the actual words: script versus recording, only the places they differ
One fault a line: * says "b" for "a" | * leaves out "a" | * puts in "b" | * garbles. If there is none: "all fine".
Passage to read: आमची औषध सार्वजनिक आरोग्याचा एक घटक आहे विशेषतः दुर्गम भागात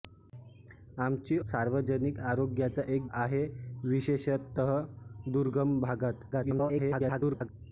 * leaves out "औषध"
* leaves out "घटक"
* garbles